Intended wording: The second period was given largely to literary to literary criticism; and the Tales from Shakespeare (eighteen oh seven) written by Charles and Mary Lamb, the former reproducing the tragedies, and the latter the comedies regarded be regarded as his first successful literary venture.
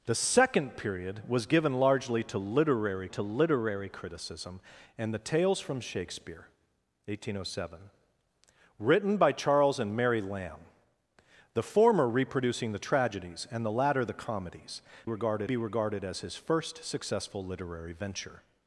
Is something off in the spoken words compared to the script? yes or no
no